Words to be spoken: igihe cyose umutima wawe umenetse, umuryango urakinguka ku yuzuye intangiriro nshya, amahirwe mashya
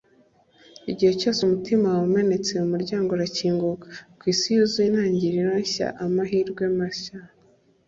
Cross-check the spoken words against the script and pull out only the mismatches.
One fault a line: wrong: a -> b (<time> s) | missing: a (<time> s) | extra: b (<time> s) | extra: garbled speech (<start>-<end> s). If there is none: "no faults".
extra: isi (4.3 s)